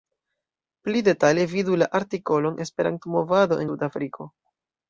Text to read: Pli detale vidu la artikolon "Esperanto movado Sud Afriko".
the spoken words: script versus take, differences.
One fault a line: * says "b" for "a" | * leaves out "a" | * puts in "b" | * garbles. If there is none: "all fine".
all fine